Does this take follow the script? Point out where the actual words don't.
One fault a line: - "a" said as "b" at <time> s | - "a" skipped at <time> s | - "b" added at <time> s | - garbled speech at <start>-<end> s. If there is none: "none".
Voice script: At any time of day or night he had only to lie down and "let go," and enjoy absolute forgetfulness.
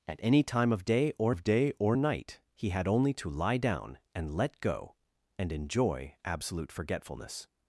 - "of day or" added at 1.3 s